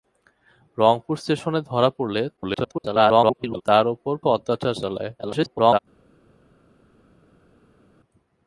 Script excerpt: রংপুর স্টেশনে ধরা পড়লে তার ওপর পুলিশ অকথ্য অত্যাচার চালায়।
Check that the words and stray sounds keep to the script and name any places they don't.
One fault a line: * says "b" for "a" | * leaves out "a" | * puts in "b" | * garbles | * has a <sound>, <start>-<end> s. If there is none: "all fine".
* garbles
* leaves out "পুলিশ অকথ্য"
* garbles